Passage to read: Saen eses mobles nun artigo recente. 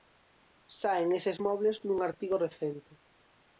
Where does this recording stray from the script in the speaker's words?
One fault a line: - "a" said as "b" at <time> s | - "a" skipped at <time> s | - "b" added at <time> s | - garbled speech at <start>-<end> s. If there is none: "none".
none